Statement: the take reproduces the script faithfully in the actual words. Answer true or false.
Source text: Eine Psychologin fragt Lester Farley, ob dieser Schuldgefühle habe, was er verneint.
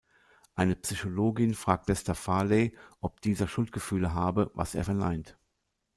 true